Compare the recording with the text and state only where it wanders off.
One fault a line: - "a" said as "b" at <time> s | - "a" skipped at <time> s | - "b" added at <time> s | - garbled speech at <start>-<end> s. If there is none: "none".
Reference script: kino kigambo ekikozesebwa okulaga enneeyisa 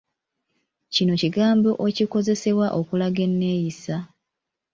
none